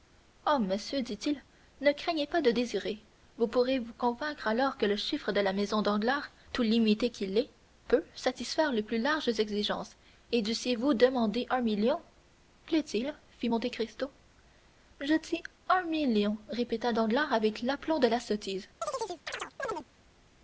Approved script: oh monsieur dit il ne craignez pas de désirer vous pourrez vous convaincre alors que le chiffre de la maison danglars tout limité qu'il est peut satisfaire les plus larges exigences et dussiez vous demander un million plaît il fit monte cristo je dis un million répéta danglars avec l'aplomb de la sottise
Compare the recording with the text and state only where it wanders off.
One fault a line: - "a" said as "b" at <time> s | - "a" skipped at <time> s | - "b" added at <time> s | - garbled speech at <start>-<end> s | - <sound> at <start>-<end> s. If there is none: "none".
- chirp at 18.8-19.9 s